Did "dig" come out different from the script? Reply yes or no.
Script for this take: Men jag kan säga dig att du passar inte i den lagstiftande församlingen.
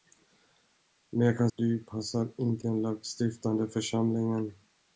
yes